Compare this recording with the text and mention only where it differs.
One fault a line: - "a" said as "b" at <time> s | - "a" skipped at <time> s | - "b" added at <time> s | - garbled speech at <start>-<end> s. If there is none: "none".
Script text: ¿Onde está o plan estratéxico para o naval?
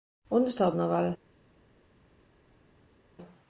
- "plan estratéxico para" skipped at 0.8 s